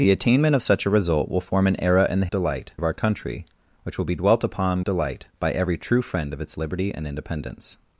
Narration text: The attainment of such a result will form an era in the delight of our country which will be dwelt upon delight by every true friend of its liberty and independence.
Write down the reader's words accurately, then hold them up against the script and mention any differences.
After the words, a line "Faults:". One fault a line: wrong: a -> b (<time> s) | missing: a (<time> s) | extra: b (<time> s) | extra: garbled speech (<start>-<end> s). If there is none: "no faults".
The attainment of such a result will form an era in the delight of our country which will be dwelt upon delight by every true friend of its liberty and independence.
Faults:
no faults